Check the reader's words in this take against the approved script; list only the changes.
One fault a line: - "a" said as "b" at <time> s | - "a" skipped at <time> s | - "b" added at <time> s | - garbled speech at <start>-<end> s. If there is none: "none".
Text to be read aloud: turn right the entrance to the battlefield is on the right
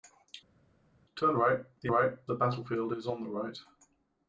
- "entrance" said as "right" at 1.9 s